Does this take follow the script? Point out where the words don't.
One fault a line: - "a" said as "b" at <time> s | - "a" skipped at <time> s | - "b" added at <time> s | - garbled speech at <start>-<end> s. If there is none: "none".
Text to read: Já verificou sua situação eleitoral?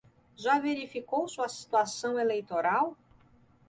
none